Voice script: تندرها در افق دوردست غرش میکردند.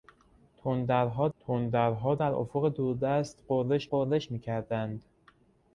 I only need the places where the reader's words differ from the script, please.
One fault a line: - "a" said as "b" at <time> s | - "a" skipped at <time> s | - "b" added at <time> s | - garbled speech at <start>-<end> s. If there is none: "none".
- "تندرها" added at 1.4 s
- "غرش" added at 3.9 s